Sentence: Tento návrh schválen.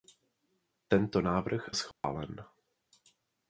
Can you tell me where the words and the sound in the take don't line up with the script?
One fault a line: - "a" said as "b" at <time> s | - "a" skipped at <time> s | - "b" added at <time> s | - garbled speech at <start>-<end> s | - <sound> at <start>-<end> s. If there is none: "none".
- dropout at 1.9-2.0 s